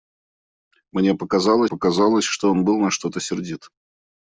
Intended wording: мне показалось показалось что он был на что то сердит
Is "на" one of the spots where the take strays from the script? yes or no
no